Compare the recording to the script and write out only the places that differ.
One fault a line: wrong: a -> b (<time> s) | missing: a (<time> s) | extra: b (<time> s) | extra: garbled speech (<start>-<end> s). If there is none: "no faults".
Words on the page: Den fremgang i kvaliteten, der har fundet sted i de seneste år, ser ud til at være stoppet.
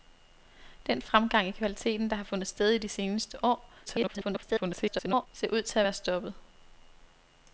extra: garbled speech (3.9-5.3 s)